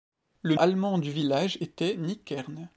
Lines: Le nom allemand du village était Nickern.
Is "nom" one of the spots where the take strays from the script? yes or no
yes